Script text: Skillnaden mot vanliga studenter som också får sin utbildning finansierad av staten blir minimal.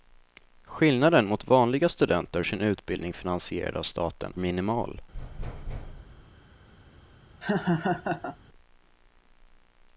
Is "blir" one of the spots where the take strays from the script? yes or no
yes